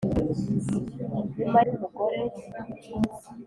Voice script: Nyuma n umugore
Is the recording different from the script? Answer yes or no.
no